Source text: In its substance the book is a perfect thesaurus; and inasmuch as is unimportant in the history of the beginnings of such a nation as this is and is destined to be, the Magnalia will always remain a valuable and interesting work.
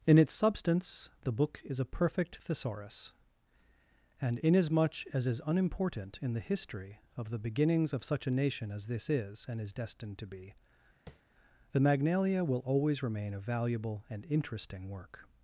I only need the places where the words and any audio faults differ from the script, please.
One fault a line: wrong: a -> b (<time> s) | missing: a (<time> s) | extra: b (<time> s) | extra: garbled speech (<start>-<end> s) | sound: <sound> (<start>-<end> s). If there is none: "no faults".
sound: tap (11.1-11.2 s)